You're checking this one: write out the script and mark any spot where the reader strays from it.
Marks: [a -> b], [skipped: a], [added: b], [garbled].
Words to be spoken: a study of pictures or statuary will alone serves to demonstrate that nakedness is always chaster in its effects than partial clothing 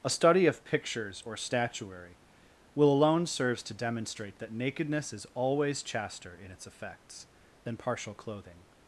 a study of pictures or statuary will alone serves to demonstrate that nakedness is always chaster in its effects than partial clothing